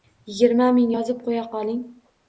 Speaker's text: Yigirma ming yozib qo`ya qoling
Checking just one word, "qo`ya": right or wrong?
right